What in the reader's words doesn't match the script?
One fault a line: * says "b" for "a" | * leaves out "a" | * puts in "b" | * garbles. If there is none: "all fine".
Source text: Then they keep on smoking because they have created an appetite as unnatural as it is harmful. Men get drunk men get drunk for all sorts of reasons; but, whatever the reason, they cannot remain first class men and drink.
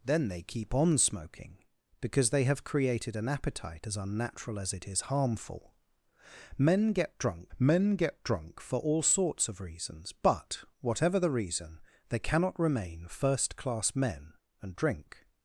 all fine